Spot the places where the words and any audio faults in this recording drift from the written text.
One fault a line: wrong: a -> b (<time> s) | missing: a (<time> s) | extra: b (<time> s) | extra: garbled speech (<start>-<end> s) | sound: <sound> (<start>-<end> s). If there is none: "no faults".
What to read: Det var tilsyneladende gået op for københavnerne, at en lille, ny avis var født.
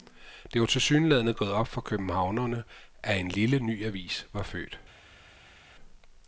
no faults